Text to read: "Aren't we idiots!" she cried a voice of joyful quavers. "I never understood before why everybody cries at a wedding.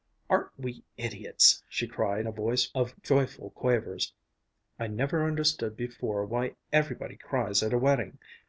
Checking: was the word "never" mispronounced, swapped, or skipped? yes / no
no